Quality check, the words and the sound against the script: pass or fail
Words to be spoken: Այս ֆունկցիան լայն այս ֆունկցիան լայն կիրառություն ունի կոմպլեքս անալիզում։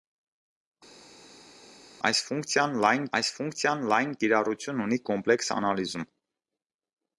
pass